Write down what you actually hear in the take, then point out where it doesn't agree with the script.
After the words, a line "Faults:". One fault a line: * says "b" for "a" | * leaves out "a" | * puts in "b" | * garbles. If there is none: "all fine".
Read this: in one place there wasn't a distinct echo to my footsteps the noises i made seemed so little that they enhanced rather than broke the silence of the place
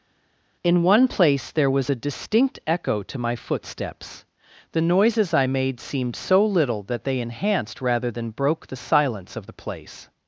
in one place there was a distinct echo to my footsteps the noises i made seemed so little that they enhanced rather than broke the silence of the place
Faults:
* says "was" for "wasn't"